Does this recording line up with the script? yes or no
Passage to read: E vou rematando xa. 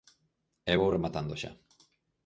yes